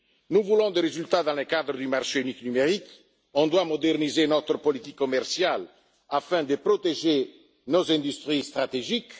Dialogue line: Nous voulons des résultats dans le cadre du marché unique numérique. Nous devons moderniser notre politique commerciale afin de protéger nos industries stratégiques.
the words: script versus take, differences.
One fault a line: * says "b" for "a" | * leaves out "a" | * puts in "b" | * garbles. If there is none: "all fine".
all fine